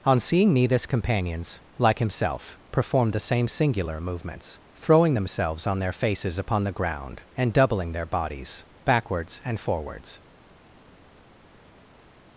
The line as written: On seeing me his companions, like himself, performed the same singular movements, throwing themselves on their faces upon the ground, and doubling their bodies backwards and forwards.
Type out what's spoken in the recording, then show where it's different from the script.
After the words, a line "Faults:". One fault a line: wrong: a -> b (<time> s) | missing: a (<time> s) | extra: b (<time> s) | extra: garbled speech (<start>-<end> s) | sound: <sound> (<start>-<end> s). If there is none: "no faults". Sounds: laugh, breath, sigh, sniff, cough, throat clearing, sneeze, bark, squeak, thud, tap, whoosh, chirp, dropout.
On seeing me this companions, like himself, performed the same singular movements, throwing themselves on their faces upon the ground, and doubling their bodies backwards and forwards.
Faults:
wrong: his -> this (0.7 s)